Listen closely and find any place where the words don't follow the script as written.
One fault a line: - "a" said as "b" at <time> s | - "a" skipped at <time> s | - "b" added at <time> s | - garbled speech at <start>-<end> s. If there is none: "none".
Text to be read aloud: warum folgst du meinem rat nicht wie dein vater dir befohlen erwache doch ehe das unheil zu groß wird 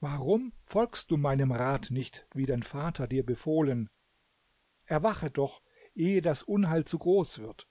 none